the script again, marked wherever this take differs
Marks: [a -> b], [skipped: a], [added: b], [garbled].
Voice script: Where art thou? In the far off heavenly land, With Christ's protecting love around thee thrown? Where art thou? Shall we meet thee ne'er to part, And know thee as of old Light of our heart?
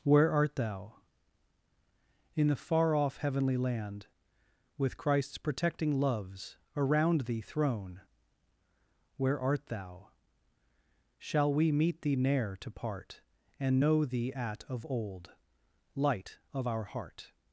Where art thou? In the far off heavenly land, With Christ's protecting [love -> loves] around thee thrown? Where art thou? Shall we meet thee ne'er to part, And know thee [as -> at] of old Light of our heart?